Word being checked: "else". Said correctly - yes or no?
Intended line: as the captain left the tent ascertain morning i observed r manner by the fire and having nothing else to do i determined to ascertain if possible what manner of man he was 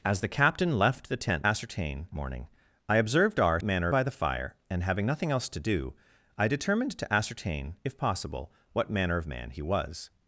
yes